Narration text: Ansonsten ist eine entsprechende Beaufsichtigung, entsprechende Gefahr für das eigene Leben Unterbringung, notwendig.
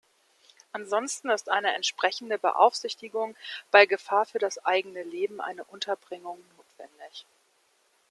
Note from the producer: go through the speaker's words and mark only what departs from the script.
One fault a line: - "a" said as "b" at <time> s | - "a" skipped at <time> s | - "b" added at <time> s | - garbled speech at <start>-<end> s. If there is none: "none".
- "entsprechende" said as "bei" at 3.7 s
- "eine" added at 5.4 s